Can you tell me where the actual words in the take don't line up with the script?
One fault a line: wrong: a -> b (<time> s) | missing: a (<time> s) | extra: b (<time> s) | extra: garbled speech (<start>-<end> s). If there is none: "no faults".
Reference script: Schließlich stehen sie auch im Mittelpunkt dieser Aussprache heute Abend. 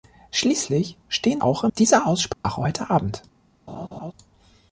missing: sie (1.4 s)
missing: Mittelpunkt (1.7 s)